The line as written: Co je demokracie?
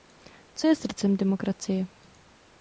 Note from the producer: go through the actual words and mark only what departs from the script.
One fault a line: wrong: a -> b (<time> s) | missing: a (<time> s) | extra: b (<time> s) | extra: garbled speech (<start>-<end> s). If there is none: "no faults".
extra: srdcem (0.8 s)